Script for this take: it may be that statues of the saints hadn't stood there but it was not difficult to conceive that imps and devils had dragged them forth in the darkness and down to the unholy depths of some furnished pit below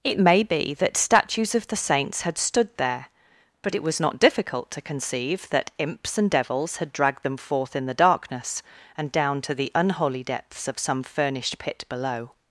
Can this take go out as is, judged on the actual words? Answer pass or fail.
fail